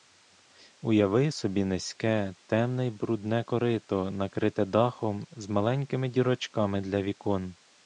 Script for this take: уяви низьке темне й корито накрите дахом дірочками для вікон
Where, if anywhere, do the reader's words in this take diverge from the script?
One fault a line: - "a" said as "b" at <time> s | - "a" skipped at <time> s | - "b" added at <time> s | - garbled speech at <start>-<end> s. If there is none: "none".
- "собі" added at 1.3 s
- "брудне" added at 2.9 s
- "з маленькими" added at 5.3 s